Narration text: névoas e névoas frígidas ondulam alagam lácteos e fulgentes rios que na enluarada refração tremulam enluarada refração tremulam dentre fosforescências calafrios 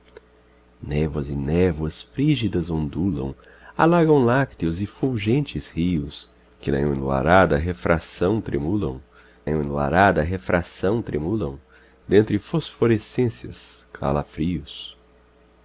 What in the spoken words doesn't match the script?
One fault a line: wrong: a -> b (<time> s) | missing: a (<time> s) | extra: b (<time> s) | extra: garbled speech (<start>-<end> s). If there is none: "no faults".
no faults